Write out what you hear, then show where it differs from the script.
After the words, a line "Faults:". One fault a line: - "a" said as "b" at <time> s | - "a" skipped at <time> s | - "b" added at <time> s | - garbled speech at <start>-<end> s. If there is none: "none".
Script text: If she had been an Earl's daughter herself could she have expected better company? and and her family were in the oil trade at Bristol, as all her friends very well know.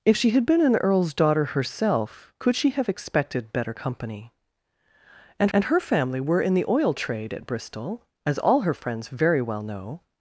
If she had been an Earl's daughter herself could she have expected better company? and and her family were in the oil trade at Bristol, as all her friends very well know.
Faults:
none